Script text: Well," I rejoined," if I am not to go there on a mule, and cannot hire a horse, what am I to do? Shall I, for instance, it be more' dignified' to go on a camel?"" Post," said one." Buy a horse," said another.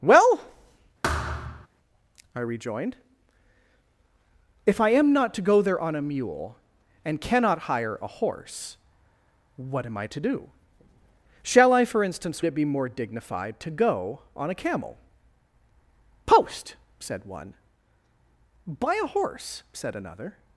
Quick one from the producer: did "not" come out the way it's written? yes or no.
yes